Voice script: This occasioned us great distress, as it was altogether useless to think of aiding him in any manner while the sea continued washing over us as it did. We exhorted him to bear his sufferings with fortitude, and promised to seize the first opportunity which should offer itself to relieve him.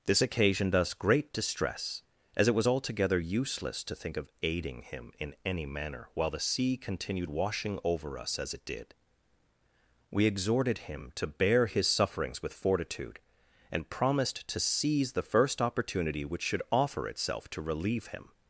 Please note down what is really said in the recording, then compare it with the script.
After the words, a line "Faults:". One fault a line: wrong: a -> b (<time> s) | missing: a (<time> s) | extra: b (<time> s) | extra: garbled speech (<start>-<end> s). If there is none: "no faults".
This occasioned us great distress, as it was altogether useless to think of aiding him in any manner while the sea continued washing over us as it did. We exhorted him to bear his sufferings with fortitude, and promised to seize the first opportunity which should offer itself to relieve him.
Faults:
no faults